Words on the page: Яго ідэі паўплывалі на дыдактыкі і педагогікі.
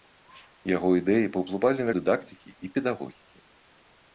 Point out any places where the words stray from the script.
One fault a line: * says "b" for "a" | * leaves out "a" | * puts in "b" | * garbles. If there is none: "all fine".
all fine